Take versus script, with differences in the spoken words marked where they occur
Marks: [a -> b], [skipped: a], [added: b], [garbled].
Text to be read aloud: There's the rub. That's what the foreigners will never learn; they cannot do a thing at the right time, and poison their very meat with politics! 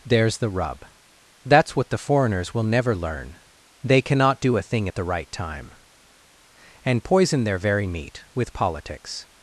There's the rub. That's what the foreigners will never learn; they cannot do a thing at the right time, and poison their very meat with politics!